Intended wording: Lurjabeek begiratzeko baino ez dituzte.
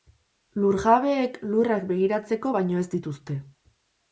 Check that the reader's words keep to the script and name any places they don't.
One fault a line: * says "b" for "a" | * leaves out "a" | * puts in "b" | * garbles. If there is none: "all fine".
* puts in "lurrak"